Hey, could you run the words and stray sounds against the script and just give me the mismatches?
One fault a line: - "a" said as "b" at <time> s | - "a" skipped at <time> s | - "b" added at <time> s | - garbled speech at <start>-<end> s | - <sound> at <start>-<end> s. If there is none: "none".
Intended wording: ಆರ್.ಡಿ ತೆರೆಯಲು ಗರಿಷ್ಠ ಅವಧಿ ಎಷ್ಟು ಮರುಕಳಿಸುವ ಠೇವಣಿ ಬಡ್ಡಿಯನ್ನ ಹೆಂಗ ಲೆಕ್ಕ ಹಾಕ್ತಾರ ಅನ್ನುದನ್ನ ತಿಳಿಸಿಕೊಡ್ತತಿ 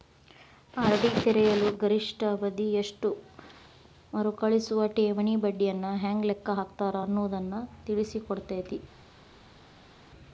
none